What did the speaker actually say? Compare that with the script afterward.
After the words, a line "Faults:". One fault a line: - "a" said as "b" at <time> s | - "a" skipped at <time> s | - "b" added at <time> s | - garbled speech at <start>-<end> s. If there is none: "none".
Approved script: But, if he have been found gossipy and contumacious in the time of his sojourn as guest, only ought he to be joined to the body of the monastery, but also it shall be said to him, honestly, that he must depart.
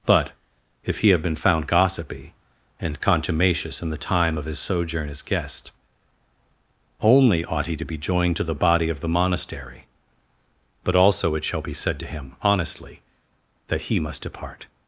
But, if he have been found gossipy and contumacious in the time of his sojourn as guest, only ought he to be joined to the body of the monastery, but also it shall be said to him, honestly, that he must depart.
Faults:
none